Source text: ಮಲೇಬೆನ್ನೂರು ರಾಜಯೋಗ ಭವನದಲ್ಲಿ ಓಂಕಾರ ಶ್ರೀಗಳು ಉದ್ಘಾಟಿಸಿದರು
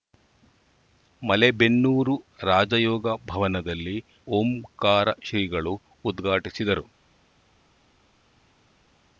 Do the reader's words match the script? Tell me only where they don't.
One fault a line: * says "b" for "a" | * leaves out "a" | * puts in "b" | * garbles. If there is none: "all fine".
all fine